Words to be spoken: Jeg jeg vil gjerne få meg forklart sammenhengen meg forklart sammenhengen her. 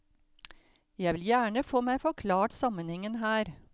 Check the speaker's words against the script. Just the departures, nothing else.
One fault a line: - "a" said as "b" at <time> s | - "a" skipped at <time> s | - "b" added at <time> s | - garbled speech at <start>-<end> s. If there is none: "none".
- "jeg" skipped at 1.1 s
- "meg forklart sammenhengen" skipped at 3.2 s